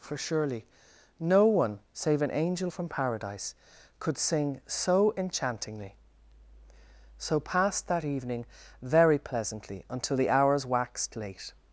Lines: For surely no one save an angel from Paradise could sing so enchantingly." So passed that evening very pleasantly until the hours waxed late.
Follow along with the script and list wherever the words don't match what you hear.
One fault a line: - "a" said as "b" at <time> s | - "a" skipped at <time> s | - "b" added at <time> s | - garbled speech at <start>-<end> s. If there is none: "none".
none